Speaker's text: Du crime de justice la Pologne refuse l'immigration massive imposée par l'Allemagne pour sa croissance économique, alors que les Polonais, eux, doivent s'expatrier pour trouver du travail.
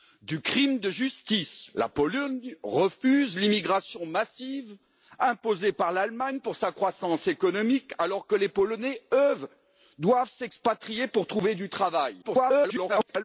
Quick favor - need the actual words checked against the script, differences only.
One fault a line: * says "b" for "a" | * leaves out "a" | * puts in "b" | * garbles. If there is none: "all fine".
* garbles